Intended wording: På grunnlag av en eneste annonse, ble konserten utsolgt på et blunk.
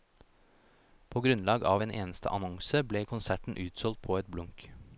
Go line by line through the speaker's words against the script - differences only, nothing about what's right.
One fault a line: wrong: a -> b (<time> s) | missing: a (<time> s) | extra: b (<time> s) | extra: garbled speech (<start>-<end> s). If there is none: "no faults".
no faults